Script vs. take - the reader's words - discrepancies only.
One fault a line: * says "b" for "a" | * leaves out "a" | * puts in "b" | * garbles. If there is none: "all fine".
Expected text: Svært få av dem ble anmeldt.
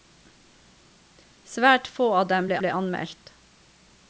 * puts in "ble"